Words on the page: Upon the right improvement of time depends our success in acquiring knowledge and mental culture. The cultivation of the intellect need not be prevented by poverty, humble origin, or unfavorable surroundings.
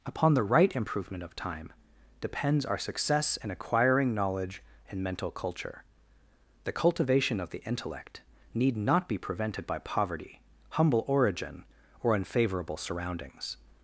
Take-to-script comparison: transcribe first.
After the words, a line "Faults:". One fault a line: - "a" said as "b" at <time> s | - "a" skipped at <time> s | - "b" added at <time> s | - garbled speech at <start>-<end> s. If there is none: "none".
Upon the right improvement of time depends our success in acquiring knowledge and mental culture. The cultivation of the intellect need not be prevented by poverty, humble origin, or unfavorable surroundings.
Faults:
none